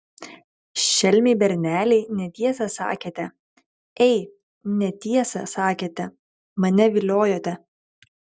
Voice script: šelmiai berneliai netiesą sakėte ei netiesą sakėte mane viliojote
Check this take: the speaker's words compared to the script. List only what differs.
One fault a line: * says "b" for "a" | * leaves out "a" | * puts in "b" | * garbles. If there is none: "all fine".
all fine